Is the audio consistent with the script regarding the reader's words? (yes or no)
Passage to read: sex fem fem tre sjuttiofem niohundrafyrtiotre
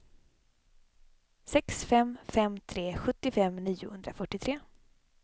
yes